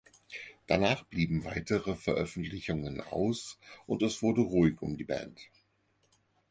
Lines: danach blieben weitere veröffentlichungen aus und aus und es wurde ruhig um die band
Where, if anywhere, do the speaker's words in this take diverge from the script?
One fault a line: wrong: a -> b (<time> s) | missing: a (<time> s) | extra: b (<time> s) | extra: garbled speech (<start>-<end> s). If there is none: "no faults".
missing: aus und (4.0 s)